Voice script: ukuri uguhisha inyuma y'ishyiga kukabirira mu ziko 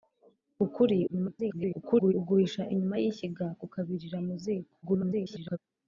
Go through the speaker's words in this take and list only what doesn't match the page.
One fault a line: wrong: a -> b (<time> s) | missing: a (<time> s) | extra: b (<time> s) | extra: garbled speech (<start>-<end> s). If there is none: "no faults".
extra: garbled speech (1.1-2.1 s)
extra: garbled speech (4.8-5.6 s)